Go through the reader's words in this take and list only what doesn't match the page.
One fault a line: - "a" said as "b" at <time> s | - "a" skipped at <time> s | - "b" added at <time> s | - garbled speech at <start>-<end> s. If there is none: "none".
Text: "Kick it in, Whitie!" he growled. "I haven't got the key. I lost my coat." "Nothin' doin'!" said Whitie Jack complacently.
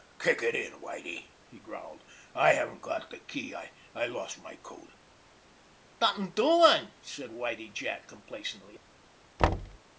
none